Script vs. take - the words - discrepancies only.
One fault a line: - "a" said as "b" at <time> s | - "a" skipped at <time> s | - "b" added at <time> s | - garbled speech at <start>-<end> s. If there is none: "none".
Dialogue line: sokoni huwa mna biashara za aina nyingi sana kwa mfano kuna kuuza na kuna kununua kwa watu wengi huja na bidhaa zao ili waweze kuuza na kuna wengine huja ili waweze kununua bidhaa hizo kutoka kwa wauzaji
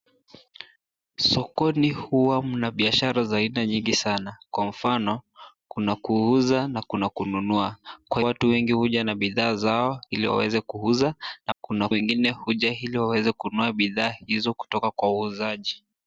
none